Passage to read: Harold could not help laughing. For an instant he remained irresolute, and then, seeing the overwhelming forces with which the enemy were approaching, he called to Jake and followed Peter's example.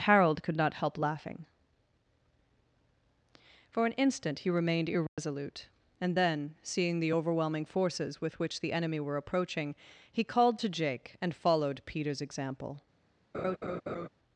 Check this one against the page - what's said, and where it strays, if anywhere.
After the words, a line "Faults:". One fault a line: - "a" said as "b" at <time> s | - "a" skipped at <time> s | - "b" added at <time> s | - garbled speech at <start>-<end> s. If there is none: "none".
Harold could not help laughing. For an instant he remained irresolute, and then, seeing the overwhelming forces with which the enemy were approaching, he called to Jake and followed Peter's example.
Faults:
none